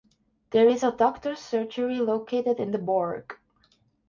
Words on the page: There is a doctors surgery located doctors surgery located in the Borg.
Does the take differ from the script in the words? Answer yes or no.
yes